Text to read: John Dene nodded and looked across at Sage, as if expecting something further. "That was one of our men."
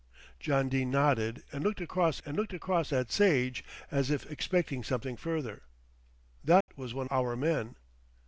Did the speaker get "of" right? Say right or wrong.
wrong